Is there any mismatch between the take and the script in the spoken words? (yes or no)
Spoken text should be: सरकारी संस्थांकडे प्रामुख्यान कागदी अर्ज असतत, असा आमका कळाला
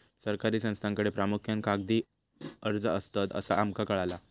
no